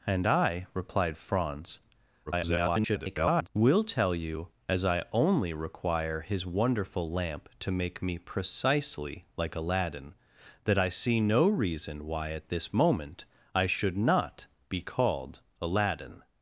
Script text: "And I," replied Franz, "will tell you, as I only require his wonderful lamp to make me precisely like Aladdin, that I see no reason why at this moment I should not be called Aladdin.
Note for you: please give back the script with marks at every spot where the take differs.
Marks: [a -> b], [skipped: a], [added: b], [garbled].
"And I," replied Franz, [garbled] "will tell you, as I only require his wonderful lamp to make me precisely like Aladdin, that I see no reason why at this moment I should not be called Aladdin.